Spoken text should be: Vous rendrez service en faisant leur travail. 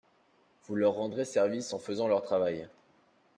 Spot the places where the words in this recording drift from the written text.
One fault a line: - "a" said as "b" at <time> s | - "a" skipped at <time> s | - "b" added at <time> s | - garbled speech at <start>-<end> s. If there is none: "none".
- "leur" added at 0.8 s